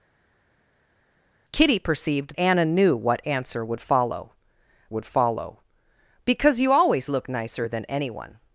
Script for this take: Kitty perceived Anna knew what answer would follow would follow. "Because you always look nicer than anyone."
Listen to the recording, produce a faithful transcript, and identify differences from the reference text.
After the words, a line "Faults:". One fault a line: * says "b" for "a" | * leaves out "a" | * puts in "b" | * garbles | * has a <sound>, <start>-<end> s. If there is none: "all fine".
Kitty perceived Anna knew what answer would follow would follow. "Because you always look nicer than anyone."
Faults:
all fine